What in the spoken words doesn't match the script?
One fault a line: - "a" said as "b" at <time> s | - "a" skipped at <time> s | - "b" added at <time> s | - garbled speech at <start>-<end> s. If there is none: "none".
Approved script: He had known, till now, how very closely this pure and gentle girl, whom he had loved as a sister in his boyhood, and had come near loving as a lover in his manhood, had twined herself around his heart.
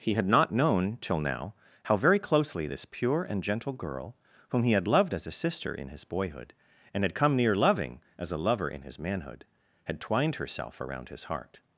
- "not" added at 0.3 s